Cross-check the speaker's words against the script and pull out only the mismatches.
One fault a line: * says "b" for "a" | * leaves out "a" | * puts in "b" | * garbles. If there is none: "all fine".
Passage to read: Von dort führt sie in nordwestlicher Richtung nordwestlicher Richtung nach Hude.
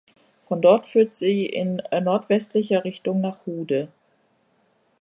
* leaves out "nordwestlicher Richtung"